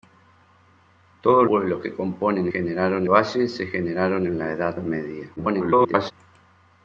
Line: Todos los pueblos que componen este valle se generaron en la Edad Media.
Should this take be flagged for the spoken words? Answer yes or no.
yes